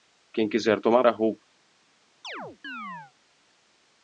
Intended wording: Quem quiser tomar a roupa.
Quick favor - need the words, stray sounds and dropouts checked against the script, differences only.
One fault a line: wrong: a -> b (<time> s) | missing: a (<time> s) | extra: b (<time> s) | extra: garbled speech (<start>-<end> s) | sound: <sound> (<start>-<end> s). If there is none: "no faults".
sound: chirp (2.2-3.1 s)